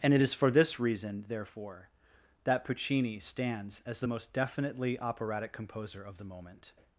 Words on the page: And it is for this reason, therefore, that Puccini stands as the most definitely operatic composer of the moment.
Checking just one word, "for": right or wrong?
right